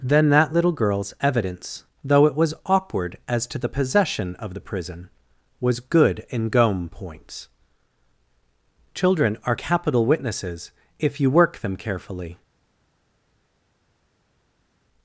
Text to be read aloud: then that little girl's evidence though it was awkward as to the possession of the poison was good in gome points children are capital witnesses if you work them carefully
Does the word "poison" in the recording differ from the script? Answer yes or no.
yes